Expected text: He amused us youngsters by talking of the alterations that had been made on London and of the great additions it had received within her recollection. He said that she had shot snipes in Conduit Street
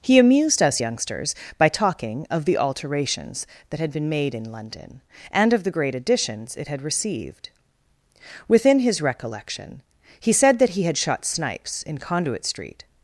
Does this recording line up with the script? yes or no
no